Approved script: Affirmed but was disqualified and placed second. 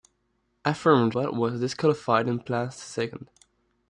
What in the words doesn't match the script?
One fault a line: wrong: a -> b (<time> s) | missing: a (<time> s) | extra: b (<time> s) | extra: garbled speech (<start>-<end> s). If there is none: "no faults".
no faults